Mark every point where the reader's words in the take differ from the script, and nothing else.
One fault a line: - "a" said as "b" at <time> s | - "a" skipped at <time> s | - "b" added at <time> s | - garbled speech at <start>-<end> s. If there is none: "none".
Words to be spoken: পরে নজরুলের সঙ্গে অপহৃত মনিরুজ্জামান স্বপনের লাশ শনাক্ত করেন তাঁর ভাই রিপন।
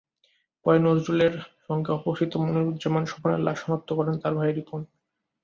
none